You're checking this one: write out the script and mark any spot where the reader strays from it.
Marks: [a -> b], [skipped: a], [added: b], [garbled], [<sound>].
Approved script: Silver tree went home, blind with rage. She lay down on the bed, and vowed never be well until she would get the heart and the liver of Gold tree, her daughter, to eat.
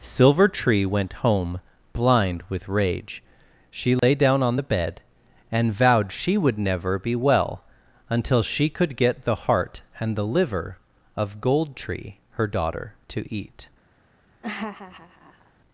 Silver tree went home, blind with rage. She lay [dropout] down on the bed, and vowed [added: she would] never be well until she [would -> could] get the heart and the liver of Gold tree, her daughter, to eat. [laugh]